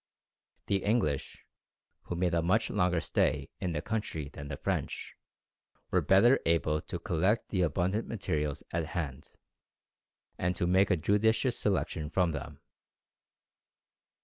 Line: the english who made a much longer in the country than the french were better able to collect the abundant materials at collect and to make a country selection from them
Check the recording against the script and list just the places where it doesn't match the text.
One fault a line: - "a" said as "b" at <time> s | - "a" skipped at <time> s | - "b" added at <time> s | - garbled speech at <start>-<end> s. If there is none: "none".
- "stay" added at 3.0 s
- "collect" said as "hand" at 9.0 s
- "country" said as "judicious" at 11.0 s